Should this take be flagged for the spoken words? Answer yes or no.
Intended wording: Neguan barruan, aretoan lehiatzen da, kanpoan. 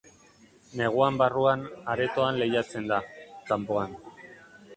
no